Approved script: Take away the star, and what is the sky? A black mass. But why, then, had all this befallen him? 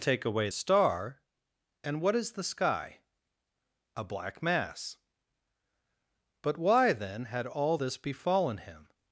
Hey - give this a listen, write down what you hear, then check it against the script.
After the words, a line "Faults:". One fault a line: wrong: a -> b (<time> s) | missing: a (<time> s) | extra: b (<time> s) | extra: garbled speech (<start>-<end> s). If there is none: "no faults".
Take away star, and what is the sky? A black mass. But why, then, had all this befallen him?
Faults:
missing: the (0.5 s)